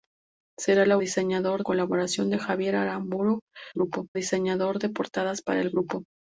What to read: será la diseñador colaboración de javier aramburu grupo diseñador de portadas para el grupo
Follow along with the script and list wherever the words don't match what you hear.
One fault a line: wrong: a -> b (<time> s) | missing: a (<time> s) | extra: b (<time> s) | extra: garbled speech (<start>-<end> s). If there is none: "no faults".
no faults